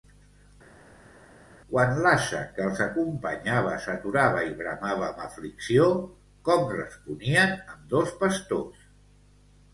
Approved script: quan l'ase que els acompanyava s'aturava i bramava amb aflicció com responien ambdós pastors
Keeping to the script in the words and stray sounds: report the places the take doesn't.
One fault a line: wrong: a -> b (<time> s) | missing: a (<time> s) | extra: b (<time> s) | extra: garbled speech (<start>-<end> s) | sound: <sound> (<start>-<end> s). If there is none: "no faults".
no faults